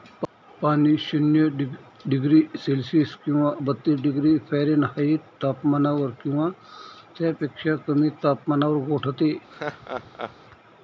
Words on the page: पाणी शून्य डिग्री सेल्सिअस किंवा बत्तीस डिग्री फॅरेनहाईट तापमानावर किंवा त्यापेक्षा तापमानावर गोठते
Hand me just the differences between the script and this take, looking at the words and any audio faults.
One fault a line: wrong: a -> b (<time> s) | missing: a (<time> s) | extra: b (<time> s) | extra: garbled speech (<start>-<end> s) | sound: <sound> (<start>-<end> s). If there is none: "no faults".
extra: कमी (7.9 s)
sound: laugh (9.5-10.4 s)